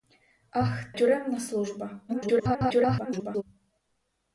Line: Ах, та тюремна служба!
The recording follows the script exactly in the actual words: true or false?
false